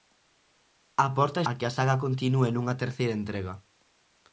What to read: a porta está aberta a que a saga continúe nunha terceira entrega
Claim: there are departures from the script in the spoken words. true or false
true